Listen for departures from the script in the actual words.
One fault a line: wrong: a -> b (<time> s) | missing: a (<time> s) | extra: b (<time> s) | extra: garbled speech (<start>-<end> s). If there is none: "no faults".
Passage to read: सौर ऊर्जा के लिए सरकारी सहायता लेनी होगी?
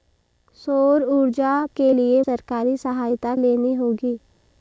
no faults